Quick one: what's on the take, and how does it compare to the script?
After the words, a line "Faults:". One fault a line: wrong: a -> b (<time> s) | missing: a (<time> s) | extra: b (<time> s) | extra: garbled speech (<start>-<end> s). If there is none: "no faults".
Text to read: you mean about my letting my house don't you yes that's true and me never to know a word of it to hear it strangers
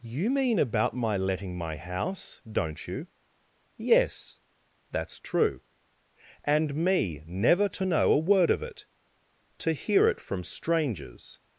you mean about my letting my house don't you yes that's true and me never to know a word of it to hear it from strangers
Faults:
extra: from (10.2 s)